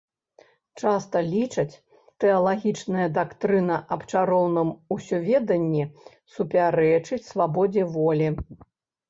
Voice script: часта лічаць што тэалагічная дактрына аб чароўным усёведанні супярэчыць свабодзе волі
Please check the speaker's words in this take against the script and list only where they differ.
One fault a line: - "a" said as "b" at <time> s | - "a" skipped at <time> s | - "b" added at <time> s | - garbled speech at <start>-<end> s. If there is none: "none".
- "што" skipped at 1.7 s